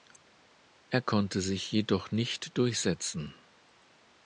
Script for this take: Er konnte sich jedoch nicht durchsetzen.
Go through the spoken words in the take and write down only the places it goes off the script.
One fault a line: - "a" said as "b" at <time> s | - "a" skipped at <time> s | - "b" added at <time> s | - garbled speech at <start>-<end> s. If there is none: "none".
none